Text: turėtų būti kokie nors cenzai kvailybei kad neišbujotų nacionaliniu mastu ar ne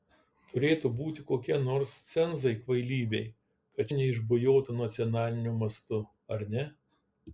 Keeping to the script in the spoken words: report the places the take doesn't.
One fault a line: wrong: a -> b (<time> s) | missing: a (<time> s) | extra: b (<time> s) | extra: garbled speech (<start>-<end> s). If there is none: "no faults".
no faults